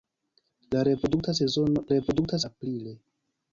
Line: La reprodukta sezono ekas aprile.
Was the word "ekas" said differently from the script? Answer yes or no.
yes